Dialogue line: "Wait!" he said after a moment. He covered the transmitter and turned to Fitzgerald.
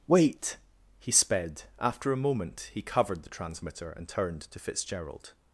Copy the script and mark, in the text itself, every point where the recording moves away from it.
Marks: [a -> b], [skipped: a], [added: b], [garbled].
"Wait!" he [said -> sped] after a moment. He covered the transmitter and turned to Fitzgerald.